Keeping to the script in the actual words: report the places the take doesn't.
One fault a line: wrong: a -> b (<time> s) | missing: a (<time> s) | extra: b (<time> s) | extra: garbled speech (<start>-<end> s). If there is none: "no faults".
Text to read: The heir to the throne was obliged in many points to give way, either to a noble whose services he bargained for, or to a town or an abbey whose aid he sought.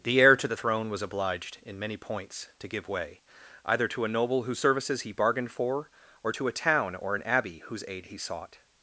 no faults